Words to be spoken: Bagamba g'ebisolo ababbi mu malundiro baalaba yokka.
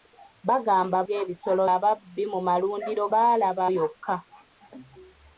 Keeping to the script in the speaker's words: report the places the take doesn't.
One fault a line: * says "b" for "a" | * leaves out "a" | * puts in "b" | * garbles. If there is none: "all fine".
all fine